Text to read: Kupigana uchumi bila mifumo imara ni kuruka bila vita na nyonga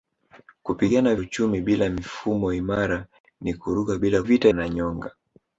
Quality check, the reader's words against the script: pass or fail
pass